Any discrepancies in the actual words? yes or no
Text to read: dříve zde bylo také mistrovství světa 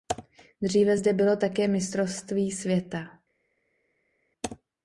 no